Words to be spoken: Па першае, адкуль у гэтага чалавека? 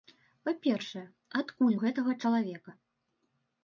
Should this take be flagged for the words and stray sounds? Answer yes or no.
no